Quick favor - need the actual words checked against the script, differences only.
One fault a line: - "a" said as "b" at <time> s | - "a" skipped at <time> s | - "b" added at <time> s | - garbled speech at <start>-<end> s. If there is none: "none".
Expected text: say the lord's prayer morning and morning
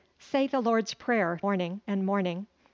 none